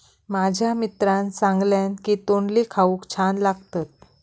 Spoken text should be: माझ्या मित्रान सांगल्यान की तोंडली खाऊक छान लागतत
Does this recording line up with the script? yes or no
yes